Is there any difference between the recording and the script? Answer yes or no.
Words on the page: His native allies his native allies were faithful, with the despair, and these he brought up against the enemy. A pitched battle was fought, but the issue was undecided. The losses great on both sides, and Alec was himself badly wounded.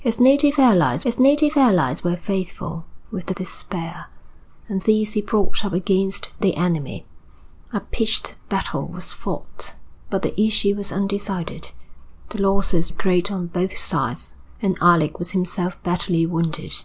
no